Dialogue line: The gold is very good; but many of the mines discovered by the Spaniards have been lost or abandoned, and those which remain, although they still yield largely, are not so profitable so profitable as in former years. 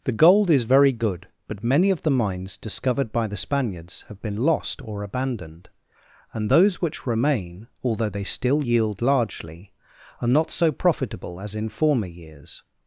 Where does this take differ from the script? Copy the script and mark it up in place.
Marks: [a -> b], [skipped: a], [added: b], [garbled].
The gold is very good; but many of the mines discovered by the Spaniards have been lost or abandoned, and those which remain, although they still yield largely, are not so profitable [skipped: so profitable] as in former years.